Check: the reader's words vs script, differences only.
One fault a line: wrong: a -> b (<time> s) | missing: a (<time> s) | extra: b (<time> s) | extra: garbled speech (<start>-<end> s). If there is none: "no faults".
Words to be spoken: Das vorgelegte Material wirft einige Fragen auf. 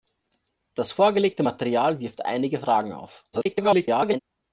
extra: garbled speech (3.3-4.2 s)